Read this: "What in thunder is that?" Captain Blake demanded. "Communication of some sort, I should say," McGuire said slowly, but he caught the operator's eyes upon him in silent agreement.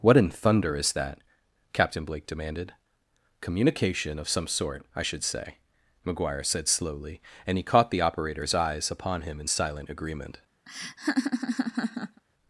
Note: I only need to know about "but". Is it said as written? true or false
false